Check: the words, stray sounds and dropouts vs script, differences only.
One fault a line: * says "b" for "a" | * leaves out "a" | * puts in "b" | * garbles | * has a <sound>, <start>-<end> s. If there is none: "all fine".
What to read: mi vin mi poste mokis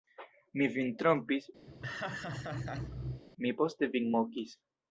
* puts in "trompis"
* has a laugh, 1.7-3.2 s
* puts in "vin"